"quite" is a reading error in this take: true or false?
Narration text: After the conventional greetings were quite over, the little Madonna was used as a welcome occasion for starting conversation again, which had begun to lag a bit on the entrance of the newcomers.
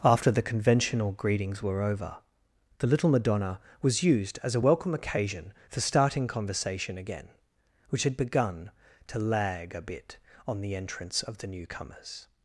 true